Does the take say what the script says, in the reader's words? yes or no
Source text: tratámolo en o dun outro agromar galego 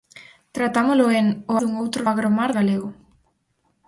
yes